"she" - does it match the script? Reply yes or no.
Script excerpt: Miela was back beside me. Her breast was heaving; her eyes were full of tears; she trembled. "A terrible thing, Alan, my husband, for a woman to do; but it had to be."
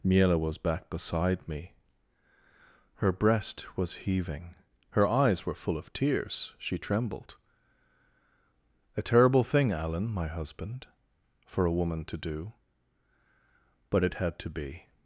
yes